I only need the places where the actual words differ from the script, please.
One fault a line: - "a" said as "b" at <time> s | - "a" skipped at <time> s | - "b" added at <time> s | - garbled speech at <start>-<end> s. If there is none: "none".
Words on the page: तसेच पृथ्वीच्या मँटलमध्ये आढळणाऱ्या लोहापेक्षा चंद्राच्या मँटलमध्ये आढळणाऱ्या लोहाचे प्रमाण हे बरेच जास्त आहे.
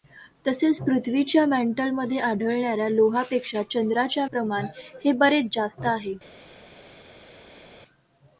- "मँटलमध्ये आढळणाऱ्या लोहाचे" skipped at 4.2 s